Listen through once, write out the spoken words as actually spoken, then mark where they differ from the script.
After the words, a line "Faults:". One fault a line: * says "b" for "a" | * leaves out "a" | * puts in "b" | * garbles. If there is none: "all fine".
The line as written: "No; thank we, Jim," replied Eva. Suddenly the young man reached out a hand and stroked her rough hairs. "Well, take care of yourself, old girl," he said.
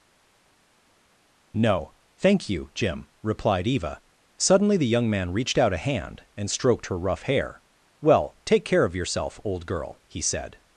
"No; thank you, Jim," replied Eva. Suddenly the young man reached out a hand and stroked her rough hair. "Well, take care of yourself, old girl," he said.
Faults:
* says "you" for "we"
* says "hair" for "hairs"